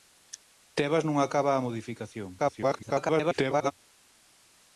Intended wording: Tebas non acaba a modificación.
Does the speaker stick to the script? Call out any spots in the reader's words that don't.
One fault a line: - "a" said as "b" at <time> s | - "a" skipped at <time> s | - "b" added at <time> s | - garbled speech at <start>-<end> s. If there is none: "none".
- garbled speech at 2.4-3.7 s